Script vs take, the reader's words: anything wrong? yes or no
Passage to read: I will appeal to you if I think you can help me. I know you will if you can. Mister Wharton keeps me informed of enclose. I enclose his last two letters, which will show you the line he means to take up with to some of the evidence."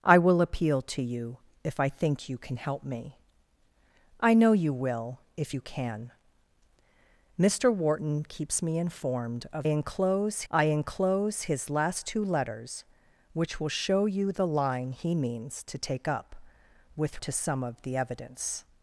no